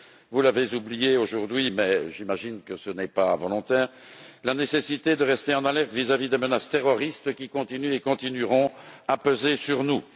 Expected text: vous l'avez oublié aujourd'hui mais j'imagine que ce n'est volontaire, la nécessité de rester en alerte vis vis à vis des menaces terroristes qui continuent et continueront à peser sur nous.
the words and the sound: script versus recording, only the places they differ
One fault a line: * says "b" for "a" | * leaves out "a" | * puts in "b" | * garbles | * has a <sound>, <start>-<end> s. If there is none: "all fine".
* puts in "pas"
* leaves out "vis"